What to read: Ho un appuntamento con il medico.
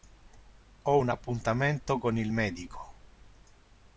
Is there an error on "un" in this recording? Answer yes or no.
no